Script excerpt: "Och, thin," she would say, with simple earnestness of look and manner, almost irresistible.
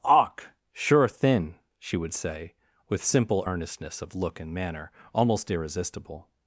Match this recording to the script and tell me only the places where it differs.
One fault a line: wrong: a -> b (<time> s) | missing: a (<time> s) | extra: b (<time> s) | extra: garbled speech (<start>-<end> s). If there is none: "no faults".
extra: sure (0.7 s)